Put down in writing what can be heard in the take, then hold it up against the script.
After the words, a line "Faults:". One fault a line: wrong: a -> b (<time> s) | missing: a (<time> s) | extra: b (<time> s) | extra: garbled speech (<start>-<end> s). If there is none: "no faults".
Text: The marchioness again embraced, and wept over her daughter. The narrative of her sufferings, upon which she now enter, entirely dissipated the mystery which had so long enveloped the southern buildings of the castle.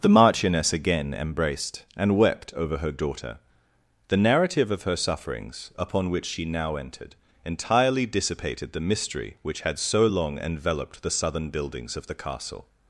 The marchioness again embraced, and wept over her daughter. The narrative of her sufferings, upon which she now entered, entirely dissipated the mystery which had so long enveloped the southern buildings of the castle.
Faults:
wrong: enter -> entered (6.8 s)